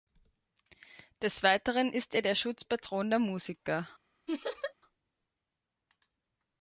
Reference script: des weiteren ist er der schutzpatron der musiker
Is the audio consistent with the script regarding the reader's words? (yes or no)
yes